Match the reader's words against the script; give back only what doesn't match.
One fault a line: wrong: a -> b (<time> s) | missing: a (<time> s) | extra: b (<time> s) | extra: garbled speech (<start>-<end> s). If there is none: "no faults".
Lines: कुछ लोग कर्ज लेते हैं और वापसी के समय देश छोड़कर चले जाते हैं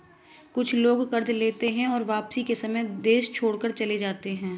no faults